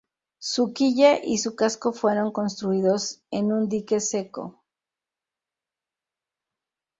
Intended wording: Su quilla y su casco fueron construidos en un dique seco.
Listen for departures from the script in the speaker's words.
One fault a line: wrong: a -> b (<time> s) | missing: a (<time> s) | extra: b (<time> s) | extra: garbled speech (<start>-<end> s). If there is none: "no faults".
no faults